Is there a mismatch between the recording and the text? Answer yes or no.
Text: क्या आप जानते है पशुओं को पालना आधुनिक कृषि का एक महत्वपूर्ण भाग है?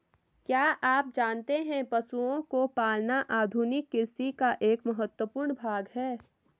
no